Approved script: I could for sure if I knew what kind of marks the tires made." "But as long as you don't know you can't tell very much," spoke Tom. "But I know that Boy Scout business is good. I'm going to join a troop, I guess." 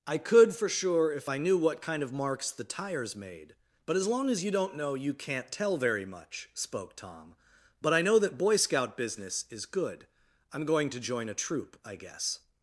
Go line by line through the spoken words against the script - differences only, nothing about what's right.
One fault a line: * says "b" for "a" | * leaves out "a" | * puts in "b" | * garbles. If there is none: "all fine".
all fine